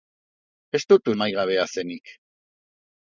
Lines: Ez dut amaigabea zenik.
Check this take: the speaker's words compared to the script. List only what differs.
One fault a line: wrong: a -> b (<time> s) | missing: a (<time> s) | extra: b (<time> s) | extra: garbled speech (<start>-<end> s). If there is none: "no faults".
no faults